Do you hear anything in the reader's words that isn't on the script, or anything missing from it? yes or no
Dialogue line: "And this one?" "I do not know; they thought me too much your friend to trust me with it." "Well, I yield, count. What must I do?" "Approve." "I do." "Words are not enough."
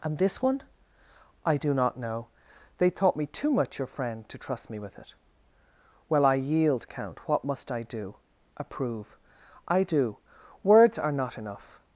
no